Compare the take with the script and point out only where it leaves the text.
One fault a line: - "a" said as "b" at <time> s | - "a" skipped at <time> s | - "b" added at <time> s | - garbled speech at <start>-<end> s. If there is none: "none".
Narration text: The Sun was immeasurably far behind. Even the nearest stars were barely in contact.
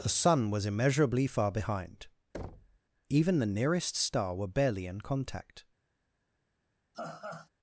- "stars" said as "star" at 3.9 s